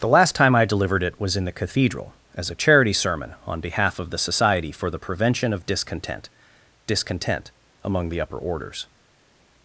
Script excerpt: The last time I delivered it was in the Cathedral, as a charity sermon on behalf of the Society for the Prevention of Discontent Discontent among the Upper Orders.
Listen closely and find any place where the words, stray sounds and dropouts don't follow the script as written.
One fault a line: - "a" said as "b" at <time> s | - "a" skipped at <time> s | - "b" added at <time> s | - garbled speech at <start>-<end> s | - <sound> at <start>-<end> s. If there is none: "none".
none